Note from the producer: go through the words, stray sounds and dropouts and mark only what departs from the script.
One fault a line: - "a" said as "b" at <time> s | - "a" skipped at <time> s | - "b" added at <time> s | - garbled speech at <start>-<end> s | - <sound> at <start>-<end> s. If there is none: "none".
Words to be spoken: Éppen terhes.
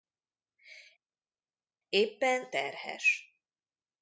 none